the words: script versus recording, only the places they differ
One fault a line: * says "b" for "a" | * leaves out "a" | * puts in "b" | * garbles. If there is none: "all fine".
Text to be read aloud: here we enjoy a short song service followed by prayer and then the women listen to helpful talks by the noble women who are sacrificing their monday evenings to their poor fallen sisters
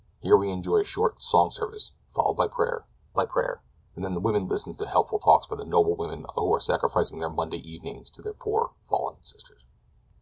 * puts in "by prayer"